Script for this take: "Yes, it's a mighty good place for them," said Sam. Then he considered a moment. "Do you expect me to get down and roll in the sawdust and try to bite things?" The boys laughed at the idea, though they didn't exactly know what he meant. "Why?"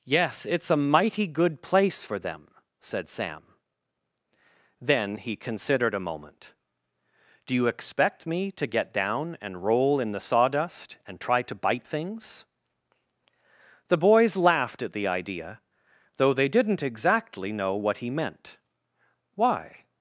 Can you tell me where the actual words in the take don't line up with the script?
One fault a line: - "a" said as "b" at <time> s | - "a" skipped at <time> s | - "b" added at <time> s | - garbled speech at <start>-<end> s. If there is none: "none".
none